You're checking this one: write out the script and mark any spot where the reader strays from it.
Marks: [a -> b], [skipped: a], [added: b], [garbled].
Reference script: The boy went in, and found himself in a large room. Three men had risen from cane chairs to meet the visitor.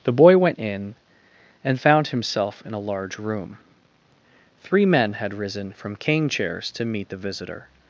The boy went in, and found himself in a large room. Three men had risen from cane chairs to meet the visitor.